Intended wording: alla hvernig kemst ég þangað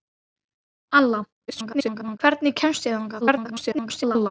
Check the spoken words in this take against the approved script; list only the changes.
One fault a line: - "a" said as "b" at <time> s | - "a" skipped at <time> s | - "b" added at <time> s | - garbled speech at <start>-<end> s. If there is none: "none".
- garbled speech at 1.5-2.2 s
- garbled speech at 3.2-4.3 s